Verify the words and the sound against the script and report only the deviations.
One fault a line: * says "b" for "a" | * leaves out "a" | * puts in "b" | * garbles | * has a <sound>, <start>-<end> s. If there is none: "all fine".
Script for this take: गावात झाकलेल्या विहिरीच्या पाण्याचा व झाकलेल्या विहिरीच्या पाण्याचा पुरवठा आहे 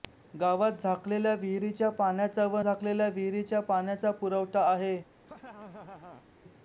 * has a laugh, 5.2-6.3 s